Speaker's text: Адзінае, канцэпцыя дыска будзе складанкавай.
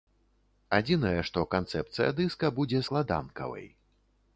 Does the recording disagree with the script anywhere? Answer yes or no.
yes